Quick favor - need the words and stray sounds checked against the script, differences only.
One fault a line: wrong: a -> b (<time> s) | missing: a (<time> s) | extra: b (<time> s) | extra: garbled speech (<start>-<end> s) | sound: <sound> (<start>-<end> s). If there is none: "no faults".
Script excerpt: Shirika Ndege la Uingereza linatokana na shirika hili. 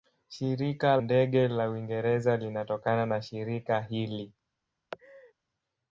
sound: laugh (4.9-5.3 s)